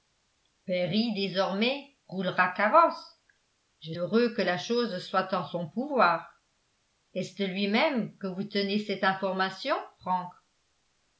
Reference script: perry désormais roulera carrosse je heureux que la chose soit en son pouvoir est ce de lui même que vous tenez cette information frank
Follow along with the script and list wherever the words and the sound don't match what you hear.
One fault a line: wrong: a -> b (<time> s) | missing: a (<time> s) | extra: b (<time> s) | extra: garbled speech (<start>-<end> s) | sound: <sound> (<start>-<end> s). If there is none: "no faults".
no faults